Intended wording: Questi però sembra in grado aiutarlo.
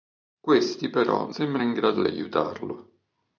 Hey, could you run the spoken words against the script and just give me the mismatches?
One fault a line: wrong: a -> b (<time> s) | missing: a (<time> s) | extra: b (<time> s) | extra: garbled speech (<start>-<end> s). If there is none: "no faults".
no faults